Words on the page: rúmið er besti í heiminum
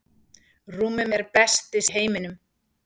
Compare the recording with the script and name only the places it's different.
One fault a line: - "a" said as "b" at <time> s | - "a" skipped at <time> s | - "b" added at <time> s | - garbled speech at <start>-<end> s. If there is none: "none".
none